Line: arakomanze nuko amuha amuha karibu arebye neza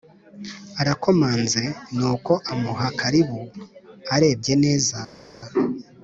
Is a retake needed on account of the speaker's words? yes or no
yes